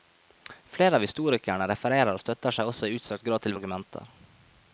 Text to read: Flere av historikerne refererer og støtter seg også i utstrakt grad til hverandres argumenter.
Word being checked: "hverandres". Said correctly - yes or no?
no